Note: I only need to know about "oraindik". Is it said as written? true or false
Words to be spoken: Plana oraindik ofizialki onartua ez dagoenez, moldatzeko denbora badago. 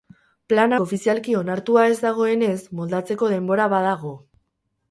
false